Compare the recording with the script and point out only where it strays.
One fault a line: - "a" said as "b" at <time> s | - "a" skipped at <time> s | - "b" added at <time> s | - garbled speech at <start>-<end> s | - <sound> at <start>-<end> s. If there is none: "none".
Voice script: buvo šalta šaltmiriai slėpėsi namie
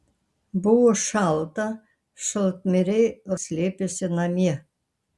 none